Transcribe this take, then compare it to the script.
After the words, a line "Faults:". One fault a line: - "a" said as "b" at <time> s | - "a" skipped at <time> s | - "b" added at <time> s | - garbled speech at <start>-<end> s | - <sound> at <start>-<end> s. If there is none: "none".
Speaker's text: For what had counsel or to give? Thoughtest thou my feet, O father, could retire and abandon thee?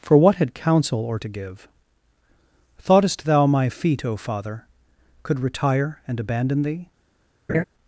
For what had counsel or to give? Thoughtest thou my feet, O father, could retire and abandon thee?
Faults:
- laugh at 7.5-7.6 s